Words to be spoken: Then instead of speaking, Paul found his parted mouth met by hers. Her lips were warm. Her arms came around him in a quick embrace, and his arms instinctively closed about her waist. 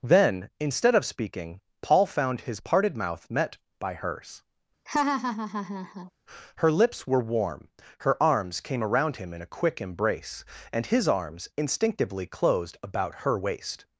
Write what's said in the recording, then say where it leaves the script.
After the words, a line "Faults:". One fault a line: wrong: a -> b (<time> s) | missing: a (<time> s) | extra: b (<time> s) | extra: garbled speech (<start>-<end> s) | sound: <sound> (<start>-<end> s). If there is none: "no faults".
Then instead of speaking, Paul found his parted mouth met by hers. Her lips were warm. Her arms came around him in a quick embrace, and his arms instinctively closed about her waist.
Faults:
sound: laugh (4.9-6.1 s)